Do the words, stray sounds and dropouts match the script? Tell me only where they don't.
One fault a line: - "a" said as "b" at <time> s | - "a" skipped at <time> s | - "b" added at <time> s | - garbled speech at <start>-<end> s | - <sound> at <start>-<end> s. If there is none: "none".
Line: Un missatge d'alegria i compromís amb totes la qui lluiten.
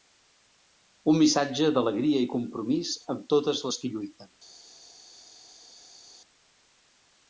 - "la" said as "les" at 3.7 s